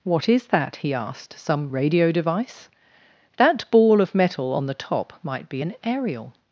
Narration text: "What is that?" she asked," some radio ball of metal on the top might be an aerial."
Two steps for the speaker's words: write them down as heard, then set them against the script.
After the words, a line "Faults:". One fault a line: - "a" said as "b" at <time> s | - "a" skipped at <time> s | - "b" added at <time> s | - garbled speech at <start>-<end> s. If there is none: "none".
"What is that?" he asked," some radio device? That ball of metal on the top might be an aerial."
Faults:
- "she" said as "he" at 0.8 s
- "device That" added at 2.1 s